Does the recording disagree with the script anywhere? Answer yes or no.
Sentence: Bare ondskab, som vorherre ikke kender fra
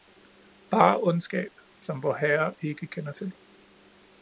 yes